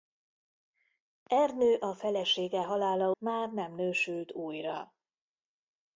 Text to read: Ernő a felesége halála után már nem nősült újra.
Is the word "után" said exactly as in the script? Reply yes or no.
no